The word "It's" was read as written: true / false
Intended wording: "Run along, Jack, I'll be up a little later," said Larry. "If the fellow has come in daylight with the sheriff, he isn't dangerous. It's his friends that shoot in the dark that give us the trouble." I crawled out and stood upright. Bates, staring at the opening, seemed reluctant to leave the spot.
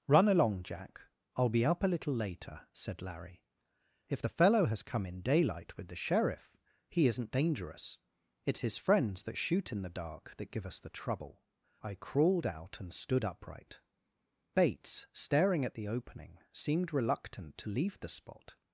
true